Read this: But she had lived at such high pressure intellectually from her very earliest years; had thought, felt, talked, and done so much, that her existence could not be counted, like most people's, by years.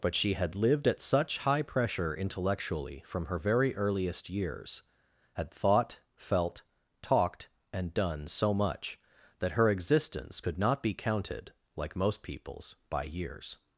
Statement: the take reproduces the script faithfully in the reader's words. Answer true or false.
true